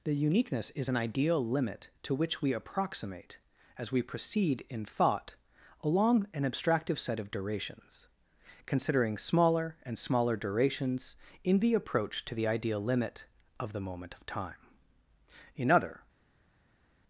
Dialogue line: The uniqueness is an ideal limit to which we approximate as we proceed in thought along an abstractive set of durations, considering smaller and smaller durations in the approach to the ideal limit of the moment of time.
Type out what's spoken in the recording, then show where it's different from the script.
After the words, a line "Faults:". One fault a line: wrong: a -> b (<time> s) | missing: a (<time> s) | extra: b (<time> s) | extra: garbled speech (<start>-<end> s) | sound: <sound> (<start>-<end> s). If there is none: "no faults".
The uniqueness is an ideal limit to which we approximate as we proceed in thought along an abstractive set of durations, considering smaller and smaller durations in the approach to the ideal limit of the moment of time. In other
Faults:
extra: In other (15.5 s)